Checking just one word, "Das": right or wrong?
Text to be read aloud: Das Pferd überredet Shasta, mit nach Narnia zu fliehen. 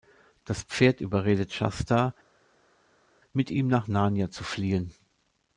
right